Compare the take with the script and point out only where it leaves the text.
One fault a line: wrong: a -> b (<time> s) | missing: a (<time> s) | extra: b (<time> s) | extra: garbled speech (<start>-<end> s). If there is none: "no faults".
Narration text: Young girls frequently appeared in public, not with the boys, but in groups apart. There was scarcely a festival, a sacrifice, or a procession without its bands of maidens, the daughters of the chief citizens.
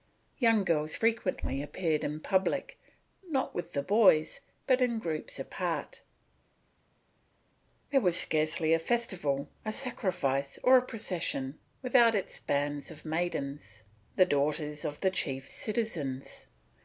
no faults